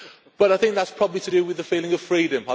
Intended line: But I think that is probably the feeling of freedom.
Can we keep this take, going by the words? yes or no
no